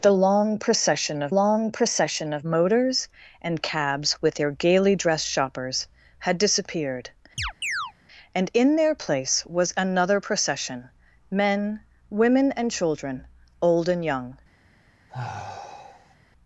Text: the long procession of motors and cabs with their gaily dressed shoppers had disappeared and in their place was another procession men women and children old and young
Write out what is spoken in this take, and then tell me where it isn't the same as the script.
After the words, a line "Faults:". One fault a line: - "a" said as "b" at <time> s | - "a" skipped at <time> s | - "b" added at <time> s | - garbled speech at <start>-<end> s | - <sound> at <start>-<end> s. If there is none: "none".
the long procession of long procession of motors and cabs with their gaily dressed shoppers had disappeared and in their place was another procession men women and children old and young
Faults:
- "long procession of" added at 1.3 s
- chirp at 7.4-7.9 s
- sigh at 15.1-16.2 s